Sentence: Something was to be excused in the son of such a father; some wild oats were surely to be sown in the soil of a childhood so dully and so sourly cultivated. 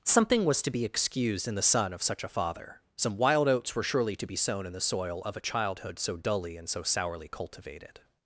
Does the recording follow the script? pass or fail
pass